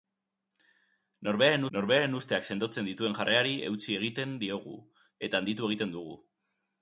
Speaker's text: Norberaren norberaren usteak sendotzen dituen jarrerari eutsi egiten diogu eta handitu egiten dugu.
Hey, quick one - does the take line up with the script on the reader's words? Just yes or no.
yes